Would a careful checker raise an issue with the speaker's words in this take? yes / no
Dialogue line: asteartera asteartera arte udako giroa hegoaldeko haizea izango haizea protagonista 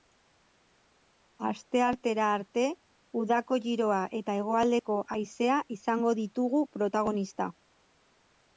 yes